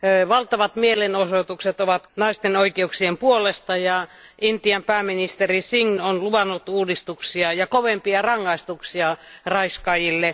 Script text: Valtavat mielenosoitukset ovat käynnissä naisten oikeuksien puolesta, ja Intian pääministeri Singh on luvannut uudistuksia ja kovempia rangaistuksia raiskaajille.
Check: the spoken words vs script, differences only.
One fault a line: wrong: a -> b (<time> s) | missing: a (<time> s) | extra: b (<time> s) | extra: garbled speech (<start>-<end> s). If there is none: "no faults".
missing: käynnissä (2.1 s)